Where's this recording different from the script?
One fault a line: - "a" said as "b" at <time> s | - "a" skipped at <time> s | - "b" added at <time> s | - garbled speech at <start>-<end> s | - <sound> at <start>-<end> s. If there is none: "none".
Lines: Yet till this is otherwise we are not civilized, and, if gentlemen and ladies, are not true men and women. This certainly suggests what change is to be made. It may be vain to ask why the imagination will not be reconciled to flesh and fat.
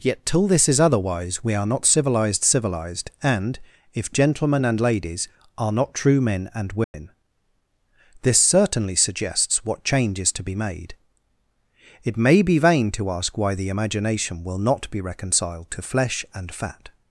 - "civilized" added at 2.4 s
- dropout at 6.8-6.9 s